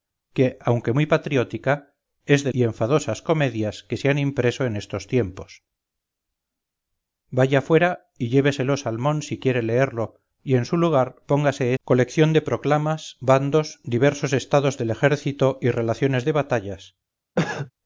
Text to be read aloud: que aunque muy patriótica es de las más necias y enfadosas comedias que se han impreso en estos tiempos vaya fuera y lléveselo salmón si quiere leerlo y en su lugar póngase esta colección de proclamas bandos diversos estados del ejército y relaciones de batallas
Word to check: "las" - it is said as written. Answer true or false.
false